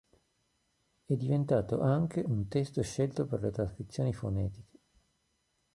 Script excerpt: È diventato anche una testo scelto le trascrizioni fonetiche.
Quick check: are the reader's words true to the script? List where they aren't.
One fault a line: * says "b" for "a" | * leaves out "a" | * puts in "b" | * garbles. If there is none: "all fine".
* says "un" for "una"
* puts in "per"